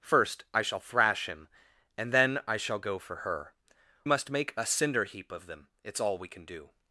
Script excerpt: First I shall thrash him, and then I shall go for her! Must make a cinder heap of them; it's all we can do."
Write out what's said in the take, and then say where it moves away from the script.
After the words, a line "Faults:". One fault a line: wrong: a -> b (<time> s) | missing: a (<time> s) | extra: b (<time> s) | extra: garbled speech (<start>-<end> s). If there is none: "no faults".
First I shall thrash him, and then I shall go for her! Must make a cinder heap of them; it's all we can do."
Faults:
no faults